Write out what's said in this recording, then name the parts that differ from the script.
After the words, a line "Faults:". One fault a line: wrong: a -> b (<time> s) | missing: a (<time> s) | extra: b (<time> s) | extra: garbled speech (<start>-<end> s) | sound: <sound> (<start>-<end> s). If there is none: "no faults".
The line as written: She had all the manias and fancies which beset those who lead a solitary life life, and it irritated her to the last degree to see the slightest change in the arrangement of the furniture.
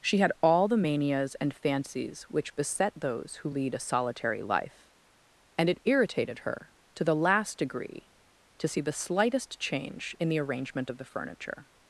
She had all the manias and fancies which beset those who lead a solitary life, and it irritated her to the last degree to see the slightest change in the arrangement of the furniture.
Faults:
missing: life (4.9 s)